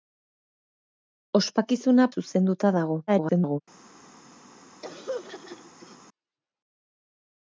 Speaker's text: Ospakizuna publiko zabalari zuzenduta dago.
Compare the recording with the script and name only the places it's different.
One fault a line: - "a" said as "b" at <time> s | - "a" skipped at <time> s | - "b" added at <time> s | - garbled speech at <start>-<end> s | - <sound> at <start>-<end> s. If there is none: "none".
- "publiko zabalari" skipped at 2.1 s
- garbled speech at 3.1-3.6 s
- throat clearing at 4.8-6.0 s